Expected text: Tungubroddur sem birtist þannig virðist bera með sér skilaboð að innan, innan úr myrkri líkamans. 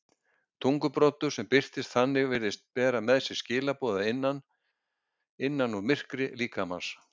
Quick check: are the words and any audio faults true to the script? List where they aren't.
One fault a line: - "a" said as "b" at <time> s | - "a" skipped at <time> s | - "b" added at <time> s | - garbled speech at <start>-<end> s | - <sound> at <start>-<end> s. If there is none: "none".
none